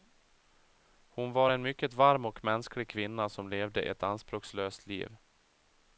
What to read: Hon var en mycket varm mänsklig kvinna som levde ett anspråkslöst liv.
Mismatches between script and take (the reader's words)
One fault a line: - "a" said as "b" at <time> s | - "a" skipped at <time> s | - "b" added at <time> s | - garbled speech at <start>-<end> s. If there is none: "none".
- "och" added at 2.3 s